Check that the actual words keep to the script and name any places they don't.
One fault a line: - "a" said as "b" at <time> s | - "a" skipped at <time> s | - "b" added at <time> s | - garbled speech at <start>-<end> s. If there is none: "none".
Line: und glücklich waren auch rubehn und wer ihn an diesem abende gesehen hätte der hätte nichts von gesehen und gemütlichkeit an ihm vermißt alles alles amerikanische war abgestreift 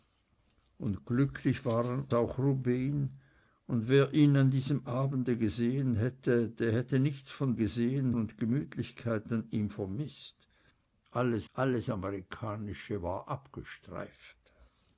none